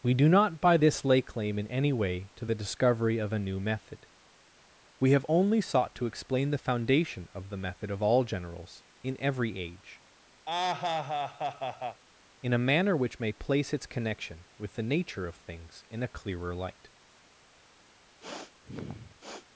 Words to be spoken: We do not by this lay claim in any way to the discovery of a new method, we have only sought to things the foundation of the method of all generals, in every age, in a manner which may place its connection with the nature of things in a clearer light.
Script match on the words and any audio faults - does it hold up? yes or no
no